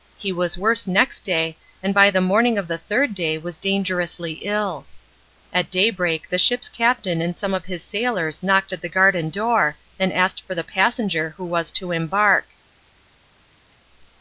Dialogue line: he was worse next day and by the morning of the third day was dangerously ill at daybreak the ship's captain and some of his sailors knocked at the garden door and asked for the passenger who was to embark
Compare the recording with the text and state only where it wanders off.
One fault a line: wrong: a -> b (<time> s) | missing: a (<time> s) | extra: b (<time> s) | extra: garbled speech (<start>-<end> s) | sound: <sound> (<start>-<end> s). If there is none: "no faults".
no faults